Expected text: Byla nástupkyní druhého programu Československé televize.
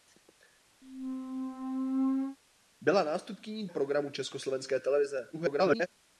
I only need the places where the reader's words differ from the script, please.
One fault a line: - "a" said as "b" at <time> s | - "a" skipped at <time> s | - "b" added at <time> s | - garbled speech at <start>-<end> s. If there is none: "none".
- "druhého" skipped at 3.7 s
- garbled speech at 5.3-5.9 s